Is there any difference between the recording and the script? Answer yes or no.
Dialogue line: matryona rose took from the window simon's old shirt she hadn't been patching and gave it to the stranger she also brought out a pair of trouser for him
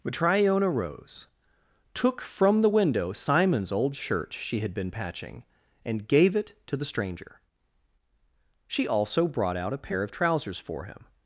yes